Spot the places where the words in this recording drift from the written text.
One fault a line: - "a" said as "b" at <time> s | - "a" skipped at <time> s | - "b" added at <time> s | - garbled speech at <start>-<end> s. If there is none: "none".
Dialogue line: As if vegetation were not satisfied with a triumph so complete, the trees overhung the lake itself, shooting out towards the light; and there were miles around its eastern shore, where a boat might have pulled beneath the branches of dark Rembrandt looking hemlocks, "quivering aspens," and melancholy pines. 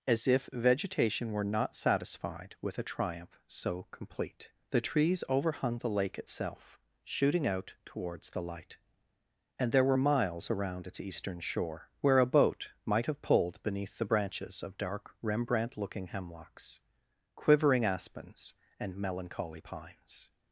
none